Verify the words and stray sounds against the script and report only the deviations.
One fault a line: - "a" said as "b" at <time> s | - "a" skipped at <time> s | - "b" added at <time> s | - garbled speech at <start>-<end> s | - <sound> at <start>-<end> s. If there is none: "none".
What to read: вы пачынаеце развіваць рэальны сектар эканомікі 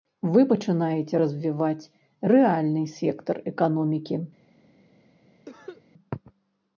- cough at 5.5-5.8 s